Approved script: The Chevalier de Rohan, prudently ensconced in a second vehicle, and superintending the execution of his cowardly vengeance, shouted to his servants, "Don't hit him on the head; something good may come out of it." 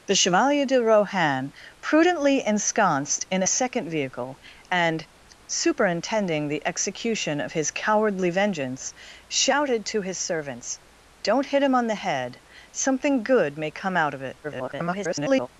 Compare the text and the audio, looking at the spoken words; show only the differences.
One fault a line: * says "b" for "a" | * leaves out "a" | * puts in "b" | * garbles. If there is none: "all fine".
* garbles